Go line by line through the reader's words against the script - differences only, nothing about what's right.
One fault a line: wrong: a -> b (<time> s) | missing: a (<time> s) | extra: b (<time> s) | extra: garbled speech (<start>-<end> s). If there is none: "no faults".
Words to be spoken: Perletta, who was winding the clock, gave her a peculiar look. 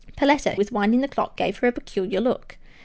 missing: who (0.6 s)